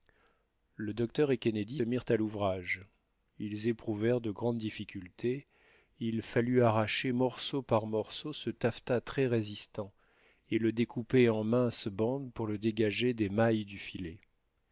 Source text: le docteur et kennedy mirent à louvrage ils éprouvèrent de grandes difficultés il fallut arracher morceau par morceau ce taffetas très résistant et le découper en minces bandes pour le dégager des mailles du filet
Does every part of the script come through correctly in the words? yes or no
yes